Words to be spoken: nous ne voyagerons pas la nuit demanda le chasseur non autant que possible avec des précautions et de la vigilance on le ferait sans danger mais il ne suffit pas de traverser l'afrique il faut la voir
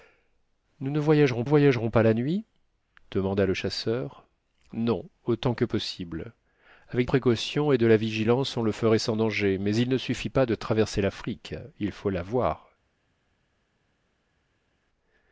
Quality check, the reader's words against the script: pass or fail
fail